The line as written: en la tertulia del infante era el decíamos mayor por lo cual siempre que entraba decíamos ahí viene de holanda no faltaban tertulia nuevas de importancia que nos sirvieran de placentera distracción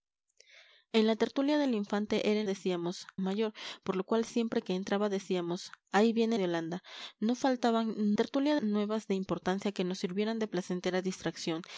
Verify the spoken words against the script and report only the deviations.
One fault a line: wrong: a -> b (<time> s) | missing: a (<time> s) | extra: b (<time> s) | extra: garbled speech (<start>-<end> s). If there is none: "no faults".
no faults